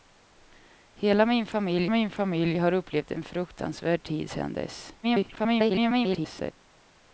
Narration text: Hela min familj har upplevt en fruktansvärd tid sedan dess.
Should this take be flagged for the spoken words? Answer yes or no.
yes